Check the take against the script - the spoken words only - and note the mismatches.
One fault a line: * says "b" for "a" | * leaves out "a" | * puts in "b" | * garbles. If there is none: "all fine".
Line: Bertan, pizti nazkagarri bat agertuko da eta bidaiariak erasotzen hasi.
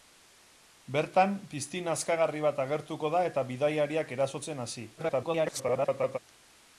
* garbles